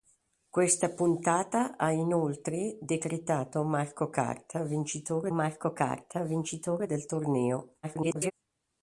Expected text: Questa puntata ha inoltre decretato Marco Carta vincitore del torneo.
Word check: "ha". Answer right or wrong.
right